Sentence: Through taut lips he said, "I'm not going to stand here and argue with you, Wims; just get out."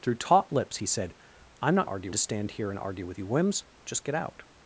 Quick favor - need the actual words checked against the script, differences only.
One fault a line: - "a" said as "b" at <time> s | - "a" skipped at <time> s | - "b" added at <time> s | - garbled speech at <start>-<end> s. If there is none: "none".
- "going" said as "argue" at 1.8 s